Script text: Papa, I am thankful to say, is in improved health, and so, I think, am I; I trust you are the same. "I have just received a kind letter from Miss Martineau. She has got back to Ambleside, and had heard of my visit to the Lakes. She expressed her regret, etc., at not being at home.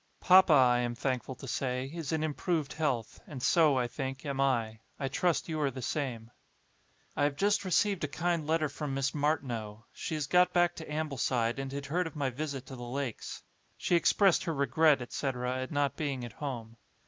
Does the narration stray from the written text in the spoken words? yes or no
no